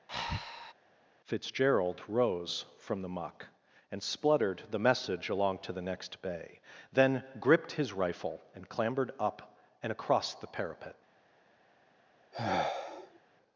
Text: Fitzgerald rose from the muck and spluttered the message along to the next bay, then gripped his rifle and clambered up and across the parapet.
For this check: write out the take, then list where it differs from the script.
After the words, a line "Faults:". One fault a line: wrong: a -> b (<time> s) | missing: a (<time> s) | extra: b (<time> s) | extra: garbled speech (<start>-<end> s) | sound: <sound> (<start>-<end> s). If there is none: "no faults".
Fitzgerald rose from the muck and spluttered the message along to the next bay, then gripped his rifle and clambered up and across the parapet.
Faults:
sound: breath (0.1-0.7 s)
sound: sigh (12.3-13.2 s)